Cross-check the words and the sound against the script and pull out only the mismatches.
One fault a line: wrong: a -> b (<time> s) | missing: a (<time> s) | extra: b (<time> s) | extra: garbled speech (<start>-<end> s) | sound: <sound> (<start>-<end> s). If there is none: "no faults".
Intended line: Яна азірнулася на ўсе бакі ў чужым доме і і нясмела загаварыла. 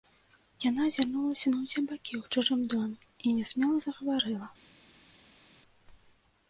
missing: і (3.4 s)